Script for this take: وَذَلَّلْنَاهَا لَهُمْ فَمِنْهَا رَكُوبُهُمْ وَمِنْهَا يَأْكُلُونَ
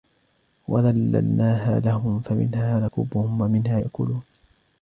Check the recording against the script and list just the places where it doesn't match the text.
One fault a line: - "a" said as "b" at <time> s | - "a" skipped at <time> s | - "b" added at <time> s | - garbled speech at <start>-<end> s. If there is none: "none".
none